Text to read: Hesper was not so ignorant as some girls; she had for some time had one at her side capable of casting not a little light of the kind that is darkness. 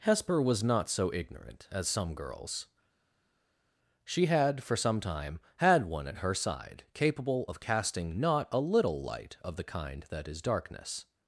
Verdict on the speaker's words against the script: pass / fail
pass